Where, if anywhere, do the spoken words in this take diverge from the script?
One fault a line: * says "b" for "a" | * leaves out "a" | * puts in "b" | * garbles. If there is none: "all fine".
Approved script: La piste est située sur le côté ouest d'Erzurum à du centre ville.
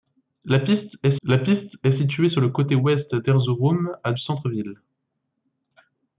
* puts in "la piste est"
* leaves out "du"